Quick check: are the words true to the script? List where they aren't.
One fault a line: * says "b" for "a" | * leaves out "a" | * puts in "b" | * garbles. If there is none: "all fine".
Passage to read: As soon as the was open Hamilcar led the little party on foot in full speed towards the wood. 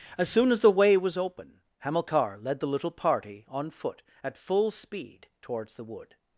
* puts in "way"
* says "at" for "in"